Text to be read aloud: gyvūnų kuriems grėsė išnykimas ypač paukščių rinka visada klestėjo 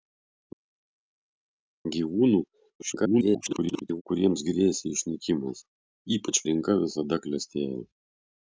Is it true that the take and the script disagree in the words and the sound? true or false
true